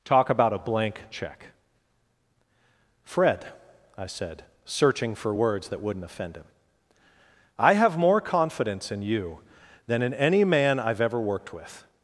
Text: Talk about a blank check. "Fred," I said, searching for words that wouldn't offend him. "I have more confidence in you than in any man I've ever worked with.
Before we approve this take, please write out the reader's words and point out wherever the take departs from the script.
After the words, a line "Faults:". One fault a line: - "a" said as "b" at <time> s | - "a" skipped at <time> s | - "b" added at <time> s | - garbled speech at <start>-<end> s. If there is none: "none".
Talk about a blank check. "Fred," I said, searching for words that wouldn't offend him. "I have more confidence in you than in any man I've ever worked with.
Faults:
none